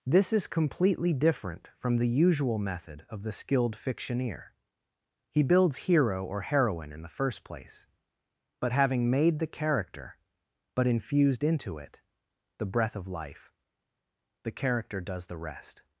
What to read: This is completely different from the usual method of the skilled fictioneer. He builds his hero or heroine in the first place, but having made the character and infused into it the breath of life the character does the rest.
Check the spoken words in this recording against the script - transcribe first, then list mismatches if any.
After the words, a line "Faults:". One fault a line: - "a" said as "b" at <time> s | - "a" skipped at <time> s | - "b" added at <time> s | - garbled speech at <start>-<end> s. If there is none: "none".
This is completely different from the usual method of the skilled fictioneer. He builds hero or heroine in the first place, but having made the character but infused into it the breath of life the character does the rest.
Faults:
- "his" skipped at 5.8 s
- "and" said as "but" at 10.7 s